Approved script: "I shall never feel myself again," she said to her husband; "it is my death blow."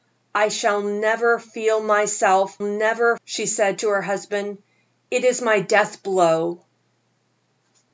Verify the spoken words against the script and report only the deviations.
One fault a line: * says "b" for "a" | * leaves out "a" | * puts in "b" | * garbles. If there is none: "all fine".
* says "never" for "again"